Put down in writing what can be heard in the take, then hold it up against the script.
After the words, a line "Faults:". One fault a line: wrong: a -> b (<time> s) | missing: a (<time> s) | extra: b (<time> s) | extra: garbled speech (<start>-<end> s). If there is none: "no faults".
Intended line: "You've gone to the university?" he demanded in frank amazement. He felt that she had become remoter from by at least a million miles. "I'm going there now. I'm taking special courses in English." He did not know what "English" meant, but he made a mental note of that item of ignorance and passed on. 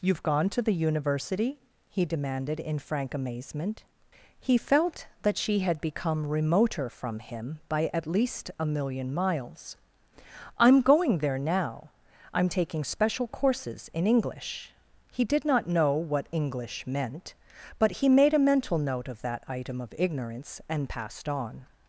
"You've gone to the university?" he demanded in frank amazement. He felt that she had become remoter from him by at least a million miles. "I'm going there now. I'm taking special courses in English." He did not know what "English" meant, but he made a mental note of that item of ignorance and passed on.
Faults:
extra: him (7.2 s)